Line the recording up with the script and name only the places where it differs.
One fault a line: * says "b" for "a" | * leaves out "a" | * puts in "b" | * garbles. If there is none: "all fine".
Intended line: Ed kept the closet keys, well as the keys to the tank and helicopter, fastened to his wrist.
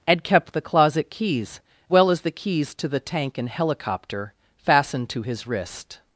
all fine